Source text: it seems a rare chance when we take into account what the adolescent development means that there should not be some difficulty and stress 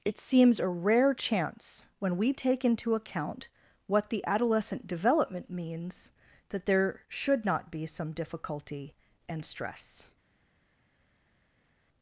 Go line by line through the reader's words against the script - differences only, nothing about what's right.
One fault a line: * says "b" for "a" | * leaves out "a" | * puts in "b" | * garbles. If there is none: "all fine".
all fine